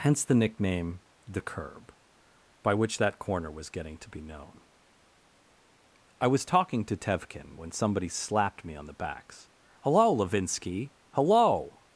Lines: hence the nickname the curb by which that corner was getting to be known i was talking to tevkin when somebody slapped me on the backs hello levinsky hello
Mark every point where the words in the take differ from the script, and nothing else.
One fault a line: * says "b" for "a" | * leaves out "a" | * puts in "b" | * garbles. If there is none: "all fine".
all fine